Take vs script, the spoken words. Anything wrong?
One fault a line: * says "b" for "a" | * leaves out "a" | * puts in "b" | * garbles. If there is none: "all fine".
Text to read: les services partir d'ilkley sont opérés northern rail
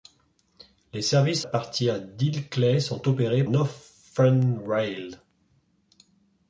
all fine